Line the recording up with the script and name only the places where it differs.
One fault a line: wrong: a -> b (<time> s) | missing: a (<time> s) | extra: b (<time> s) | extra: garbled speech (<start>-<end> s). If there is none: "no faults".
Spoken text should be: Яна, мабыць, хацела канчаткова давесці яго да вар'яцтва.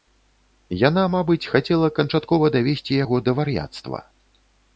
no faults